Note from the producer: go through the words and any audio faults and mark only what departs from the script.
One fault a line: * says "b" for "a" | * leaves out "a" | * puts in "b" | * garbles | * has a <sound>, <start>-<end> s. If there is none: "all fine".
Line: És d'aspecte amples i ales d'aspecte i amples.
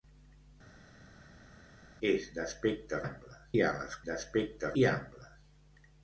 all fine